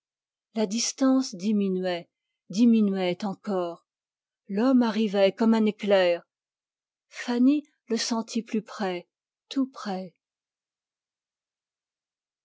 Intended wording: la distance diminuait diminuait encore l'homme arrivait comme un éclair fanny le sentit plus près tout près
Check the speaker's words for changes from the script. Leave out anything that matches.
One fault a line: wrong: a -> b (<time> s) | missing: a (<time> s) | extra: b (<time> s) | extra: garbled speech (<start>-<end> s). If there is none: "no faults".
no faults